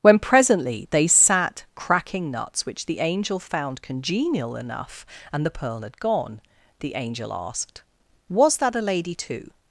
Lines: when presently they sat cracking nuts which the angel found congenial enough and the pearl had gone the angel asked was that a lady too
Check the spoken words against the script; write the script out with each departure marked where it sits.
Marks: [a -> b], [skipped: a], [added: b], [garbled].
when presently they sat cracking nuts which the angel found congenial enough and the pearl had gone the angel asked was that a lady too